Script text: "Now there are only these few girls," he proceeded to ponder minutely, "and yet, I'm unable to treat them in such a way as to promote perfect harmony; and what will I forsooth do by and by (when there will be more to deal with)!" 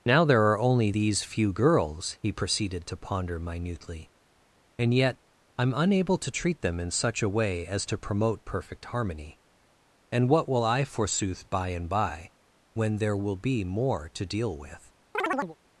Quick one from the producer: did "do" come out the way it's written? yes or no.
no